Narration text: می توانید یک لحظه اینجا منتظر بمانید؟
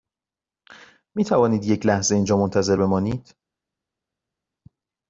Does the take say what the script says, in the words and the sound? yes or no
yes